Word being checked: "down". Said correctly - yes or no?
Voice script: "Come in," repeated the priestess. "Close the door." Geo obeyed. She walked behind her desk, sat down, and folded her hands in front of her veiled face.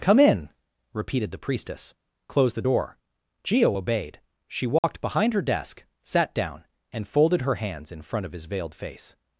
yes